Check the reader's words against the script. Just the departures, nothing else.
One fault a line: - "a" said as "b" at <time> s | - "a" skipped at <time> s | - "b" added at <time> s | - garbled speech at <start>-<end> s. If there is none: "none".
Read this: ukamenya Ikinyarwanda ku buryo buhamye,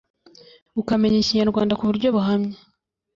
none